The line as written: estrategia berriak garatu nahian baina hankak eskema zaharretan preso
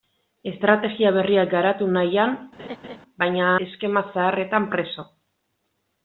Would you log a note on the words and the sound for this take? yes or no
yes